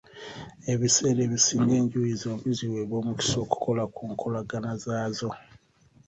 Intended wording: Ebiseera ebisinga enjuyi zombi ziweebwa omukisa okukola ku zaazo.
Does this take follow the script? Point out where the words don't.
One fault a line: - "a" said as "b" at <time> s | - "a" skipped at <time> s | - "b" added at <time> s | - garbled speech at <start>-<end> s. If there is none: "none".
- "nkolagana" added at 4.1 s